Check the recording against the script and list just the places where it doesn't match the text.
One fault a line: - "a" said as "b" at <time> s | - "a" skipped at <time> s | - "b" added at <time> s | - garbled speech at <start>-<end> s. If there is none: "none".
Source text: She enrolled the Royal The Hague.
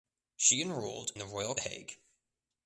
none